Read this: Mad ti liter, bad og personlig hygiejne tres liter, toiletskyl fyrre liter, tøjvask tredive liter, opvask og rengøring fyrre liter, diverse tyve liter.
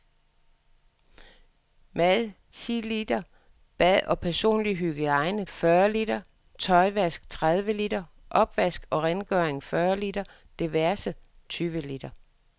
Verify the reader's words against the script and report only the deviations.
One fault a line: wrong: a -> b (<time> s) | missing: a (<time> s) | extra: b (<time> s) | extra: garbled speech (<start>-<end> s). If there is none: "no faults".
missing: tres liter toiletskyl (5.5 s)